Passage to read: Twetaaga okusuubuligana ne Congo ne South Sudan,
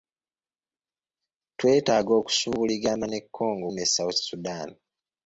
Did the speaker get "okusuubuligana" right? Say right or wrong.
right